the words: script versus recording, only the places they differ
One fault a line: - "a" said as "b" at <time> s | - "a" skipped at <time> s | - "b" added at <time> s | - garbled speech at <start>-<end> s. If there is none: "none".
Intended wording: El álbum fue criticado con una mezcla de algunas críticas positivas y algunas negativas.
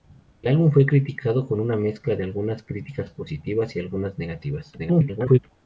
- garbled speech at 4.8-5.4 s